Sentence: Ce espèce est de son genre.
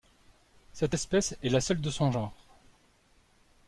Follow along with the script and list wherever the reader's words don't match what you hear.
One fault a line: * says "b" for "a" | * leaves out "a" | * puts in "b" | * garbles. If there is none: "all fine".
* says "Cette" for "Ce"
* puts in "la seule"